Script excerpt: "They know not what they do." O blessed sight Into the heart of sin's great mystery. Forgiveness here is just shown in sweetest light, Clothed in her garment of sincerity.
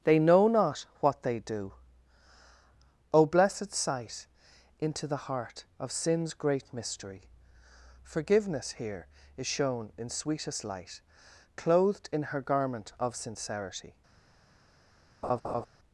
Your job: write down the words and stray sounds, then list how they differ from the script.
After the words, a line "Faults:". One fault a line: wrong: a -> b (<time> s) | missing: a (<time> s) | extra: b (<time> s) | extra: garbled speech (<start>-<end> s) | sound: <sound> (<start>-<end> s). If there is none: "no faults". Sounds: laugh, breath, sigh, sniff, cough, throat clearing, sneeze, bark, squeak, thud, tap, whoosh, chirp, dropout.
"They know not what they do." O blessed sight Into the heart of sin's great mystery. Forgiveness here is shown in sweetest light, Clothed in her garment of sincerity.
Faults:
missing: just (9.4 s)
sound: laugh (15.2-15.7 s)